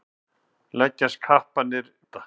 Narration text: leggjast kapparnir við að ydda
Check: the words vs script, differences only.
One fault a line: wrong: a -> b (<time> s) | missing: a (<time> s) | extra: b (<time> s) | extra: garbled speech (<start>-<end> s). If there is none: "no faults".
missing: við að (1.9 s)